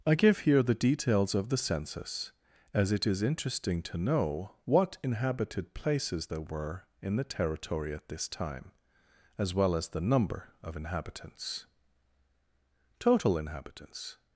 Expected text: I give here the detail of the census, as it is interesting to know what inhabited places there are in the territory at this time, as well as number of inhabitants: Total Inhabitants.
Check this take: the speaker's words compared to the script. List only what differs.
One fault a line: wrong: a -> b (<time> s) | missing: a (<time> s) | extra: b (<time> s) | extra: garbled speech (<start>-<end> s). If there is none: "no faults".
wrong: detail -> details (0.7 s)
wrong: are -> were (6.4 s)
extra: the (9.9 s)